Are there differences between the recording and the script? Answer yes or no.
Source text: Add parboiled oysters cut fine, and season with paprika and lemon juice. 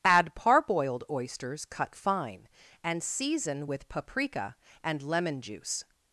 no